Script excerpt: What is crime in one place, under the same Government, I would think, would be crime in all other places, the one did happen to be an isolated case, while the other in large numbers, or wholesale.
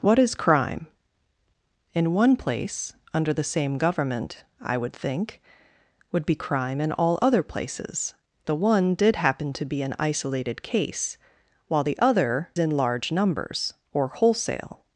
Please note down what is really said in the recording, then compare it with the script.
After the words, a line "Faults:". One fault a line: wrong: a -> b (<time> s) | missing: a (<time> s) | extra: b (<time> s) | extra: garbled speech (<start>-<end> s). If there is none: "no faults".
What is crime in one place, under the same Government, I would think, would be crime in all other places, the one did happen to be an isolated case, while the other in large numbers, or wholesale.
Faults:
no faults